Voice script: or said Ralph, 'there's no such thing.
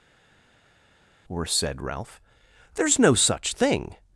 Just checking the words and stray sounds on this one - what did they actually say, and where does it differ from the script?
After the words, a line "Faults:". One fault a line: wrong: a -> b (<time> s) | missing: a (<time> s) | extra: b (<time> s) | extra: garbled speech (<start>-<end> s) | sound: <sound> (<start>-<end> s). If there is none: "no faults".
or said Ralph, 'there's no such thing.
Faults:
no faults